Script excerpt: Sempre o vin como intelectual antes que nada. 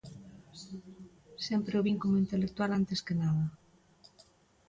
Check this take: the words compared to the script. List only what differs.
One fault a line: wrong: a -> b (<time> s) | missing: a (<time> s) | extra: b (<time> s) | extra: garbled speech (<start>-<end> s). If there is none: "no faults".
no faults